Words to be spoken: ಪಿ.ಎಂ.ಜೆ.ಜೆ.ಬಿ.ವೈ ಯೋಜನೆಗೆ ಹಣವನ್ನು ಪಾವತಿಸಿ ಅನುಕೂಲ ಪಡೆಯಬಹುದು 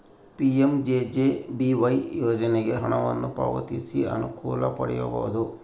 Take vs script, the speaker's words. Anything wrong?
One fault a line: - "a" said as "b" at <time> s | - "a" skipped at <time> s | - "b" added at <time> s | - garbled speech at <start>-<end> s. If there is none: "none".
none